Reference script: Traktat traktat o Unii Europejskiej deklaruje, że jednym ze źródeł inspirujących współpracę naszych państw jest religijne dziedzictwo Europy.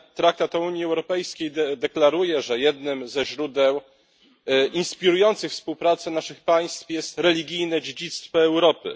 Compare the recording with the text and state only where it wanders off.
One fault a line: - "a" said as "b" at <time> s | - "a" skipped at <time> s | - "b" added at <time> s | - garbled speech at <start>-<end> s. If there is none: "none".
- "traktat" skipped at 0.6 s